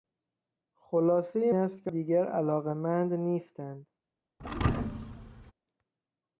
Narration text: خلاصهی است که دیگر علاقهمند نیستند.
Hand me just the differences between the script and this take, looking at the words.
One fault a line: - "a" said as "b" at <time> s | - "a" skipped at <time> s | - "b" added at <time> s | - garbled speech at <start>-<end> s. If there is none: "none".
none